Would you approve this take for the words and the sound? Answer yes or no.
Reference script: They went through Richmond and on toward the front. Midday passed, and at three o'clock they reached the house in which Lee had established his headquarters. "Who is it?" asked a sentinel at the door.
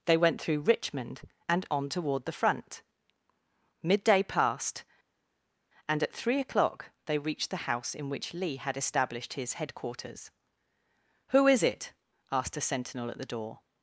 yes